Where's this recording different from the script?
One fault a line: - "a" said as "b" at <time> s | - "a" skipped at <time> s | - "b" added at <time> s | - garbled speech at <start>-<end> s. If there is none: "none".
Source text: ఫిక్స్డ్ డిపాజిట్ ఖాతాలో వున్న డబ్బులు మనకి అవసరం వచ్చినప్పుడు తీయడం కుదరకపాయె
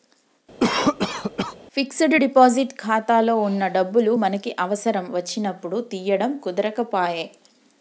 none